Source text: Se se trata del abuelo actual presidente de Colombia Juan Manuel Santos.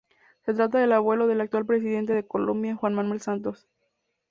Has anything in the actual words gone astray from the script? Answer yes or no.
yes